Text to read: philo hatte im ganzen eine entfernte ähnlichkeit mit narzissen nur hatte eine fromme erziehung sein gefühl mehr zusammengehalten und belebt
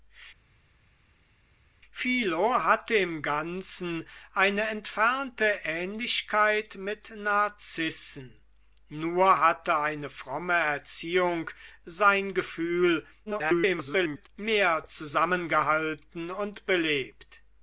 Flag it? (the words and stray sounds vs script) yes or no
yes